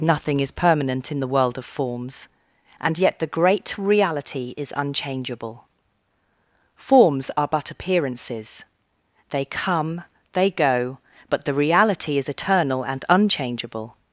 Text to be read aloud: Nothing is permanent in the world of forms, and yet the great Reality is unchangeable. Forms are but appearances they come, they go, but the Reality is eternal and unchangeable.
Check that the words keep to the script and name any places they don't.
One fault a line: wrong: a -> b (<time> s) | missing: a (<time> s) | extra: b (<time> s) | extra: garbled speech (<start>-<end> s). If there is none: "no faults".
no faults